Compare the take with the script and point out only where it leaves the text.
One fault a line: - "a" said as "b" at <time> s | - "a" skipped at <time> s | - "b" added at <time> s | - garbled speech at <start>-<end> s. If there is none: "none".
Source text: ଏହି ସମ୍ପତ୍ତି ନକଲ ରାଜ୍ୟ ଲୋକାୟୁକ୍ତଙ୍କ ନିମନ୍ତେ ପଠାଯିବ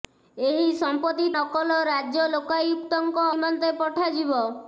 none